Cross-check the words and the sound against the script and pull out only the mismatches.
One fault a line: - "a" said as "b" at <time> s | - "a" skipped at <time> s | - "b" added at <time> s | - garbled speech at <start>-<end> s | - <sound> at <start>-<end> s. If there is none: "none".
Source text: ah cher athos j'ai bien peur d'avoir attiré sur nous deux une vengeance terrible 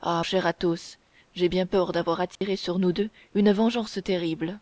- dropout at 2.4-2.4 s